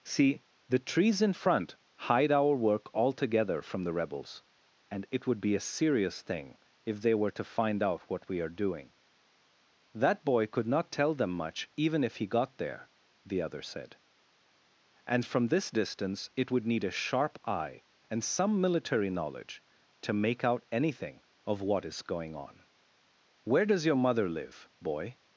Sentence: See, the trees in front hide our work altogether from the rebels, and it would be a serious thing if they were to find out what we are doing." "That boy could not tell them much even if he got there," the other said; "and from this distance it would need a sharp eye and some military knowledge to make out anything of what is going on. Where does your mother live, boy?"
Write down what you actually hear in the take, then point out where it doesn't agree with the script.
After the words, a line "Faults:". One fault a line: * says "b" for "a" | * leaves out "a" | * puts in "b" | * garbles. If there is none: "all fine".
See, the trees in front hide our work altogether from the rebels, and it would be a serious thing if they were to find out what we are doing." "That boy could not tell them much even if he got there," the other said; "and from this distance it would need a sharp eye and some military knowledge to make out anything of what is going on. Where does your mother live, boy?"
Faults:
all fine